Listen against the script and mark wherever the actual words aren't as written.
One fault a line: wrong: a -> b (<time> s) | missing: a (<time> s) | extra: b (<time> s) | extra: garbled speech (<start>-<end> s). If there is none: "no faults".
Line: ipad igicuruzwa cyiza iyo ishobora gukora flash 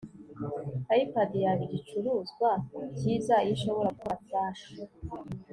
extra: yaba (1.4 s)